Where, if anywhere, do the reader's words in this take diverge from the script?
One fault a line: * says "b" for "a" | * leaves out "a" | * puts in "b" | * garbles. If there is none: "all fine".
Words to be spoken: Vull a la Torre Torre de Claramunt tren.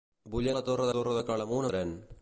all fine